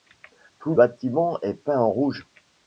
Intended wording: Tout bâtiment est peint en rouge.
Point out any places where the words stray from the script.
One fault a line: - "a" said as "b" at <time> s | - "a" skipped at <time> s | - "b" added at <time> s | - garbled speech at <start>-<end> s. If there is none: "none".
none